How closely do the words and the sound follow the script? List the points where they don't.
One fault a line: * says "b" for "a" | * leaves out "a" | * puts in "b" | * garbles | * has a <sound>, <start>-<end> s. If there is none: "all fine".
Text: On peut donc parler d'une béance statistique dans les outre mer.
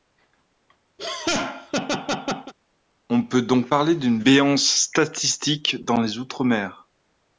* has a laugh, 1.0-2.5 s